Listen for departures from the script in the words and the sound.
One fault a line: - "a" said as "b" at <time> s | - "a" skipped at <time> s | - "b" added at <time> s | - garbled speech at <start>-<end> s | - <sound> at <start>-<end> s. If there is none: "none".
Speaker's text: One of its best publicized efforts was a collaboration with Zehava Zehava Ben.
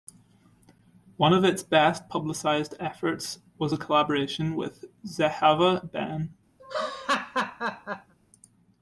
- "Zehava" skipped at 5.9 s
- laugh at 6.6-8.1 s